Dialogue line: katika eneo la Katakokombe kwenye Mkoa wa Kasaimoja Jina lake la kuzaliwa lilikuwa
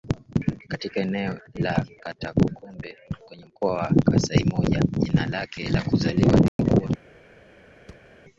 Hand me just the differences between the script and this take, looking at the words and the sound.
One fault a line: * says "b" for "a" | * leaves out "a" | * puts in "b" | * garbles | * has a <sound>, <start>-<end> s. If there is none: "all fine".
* has a dropout, 6.5-6.6 s
* has a thud, 7.9-8.1 s